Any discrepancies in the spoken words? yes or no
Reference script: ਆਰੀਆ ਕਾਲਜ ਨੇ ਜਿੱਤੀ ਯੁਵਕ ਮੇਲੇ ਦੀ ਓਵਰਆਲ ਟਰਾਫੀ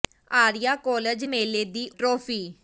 yes